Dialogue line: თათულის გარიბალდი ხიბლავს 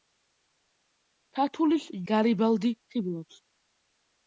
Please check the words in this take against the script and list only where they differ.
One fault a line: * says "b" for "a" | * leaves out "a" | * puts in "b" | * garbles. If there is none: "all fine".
all fine